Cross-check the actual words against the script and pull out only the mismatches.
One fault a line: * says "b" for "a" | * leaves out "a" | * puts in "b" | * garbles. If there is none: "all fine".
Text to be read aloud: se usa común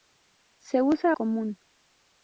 all fine